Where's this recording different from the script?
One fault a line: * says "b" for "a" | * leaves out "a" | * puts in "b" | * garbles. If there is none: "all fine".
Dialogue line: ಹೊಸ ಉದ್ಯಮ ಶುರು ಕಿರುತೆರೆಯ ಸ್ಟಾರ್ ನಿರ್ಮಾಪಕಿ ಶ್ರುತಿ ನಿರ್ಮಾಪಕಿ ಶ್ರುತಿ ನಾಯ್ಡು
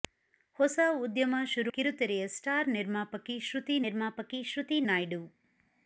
all fine